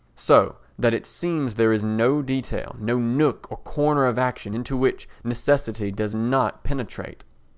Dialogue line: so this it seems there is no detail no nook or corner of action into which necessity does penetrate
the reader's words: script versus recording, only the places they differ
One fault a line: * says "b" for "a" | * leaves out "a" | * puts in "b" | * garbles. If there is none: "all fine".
* says "that" for "this"
* puts in "not"